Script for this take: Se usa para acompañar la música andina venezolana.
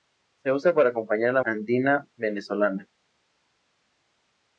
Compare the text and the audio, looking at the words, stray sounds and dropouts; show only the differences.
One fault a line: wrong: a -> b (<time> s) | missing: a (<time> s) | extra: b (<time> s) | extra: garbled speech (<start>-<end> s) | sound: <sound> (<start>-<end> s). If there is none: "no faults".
missing: música (1.4 s)